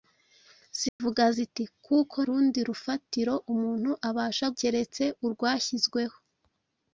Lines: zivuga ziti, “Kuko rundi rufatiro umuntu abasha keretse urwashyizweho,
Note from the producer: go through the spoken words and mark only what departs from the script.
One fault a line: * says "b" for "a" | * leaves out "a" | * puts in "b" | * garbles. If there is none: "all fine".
all fine